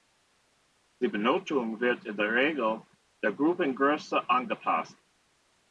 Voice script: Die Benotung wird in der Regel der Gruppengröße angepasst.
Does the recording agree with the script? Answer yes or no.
yes